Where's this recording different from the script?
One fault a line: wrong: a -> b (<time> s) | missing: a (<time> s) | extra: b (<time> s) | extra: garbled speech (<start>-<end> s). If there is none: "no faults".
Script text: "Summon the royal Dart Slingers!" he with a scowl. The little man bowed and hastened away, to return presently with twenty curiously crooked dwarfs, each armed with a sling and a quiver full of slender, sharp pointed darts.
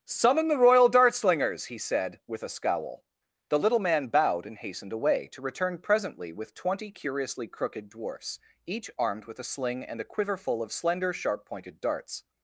extra: said (1.8 s)